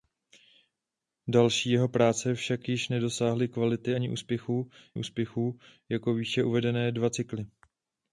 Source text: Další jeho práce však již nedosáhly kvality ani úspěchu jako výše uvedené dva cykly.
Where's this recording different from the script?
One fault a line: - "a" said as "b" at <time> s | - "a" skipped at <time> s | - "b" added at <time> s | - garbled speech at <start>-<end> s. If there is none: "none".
- "úspěchu" added at 5.0 s